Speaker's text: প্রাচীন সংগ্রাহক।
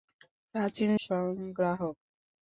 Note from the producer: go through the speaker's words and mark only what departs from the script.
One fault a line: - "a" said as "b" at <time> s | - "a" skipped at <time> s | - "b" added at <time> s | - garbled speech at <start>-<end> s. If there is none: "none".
none